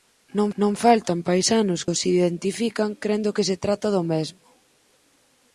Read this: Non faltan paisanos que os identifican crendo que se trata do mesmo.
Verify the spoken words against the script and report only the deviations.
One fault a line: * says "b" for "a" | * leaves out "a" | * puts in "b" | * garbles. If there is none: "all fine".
* puts in "non"
* leaves out "que"